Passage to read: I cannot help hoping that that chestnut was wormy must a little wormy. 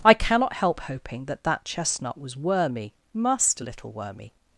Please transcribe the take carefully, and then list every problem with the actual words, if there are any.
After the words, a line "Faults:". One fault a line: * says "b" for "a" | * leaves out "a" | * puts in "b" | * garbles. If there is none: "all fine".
I cannot help hoping that that chestnut was wormy must a little wormy.
Faults:
all fine